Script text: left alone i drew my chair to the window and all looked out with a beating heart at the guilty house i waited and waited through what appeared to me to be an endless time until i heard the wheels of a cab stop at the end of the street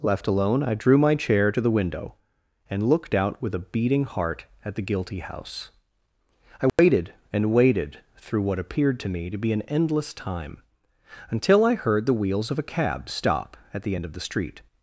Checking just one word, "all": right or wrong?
wrong